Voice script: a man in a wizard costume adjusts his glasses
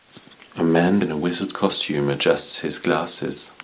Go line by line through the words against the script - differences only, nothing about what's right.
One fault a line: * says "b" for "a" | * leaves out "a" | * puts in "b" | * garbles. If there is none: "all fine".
all fine